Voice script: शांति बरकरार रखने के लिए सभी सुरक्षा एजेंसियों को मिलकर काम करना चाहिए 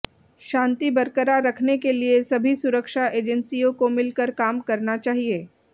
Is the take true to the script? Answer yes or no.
yes